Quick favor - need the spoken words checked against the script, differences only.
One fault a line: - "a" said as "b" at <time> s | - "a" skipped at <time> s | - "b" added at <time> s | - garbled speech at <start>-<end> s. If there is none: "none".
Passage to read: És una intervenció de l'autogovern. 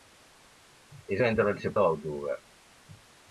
none